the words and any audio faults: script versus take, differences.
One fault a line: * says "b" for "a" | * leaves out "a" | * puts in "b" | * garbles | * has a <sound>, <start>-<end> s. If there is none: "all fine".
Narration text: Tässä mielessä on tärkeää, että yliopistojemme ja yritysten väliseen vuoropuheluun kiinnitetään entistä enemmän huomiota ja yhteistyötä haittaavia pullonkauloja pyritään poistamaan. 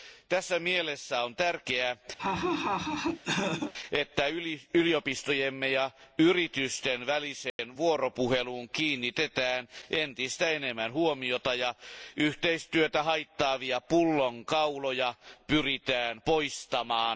* has a laugh, 2.2-3.7 s
* has a dropout, 7.5-7.6 s